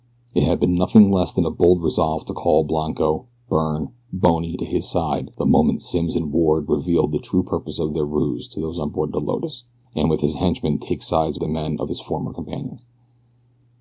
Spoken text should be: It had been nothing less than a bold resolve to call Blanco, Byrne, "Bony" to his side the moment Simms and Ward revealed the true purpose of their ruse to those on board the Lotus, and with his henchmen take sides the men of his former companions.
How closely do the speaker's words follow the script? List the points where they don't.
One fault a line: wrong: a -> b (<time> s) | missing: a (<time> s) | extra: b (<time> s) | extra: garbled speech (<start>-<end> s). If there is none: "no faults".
no faults